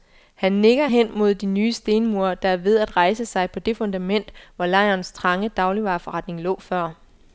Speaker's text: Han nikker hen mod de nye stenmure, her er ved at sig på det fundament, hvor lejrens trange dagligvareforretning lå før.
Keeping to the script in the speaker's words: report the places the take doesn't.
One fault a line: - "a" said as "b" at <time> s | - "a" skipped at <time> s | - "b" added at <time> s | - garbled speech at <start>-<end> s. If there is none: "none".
- "her" said as "der" at 2.3 s
- "rejse" added at 3.0 s